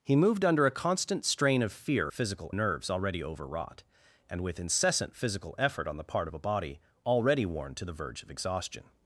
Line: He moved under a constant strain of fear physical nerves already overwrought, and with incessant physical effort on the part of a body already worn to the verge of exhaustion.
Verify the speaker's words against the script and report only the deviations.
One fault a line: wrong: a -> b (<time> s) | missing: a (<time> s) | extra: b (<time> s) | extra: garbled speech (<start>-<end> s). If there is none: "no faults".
no faults